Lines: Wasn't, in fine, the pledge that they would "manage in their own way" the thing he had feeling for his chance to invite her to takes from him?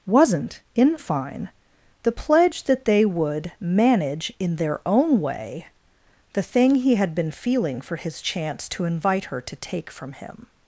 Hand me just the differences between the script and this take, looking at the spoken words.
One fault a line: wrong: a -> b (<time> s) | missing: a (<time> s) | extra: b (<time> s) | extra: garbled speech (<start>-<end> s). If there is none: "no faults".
extra: been (7.1 s)
wrong: takes -> take (9.5 s)